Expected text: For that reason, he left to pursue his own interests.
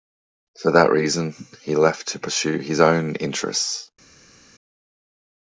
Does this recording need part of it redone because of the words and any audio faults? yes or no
no